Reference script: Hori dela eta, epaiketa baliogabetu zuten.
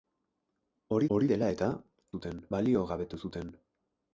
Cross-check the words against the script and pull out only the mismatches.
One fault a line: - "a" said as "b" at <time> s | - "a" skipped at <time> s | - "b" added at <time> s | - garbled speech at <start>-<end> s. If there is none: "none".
- "hori" added at 1.1 s
- "epaiketa" said as "zuten" at 2.2 s